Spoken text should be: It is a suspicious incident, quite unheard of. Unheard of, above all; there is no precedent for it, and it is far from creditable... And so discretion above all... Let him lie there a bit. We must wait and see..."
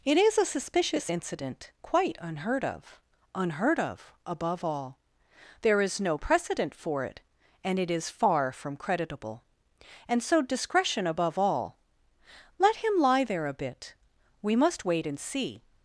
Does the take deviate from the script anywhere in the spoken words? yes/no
no